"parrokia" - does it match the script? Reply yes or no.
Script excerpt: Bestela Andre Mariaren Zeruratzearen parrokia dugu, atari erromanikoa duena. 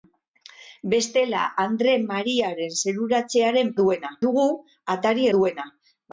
no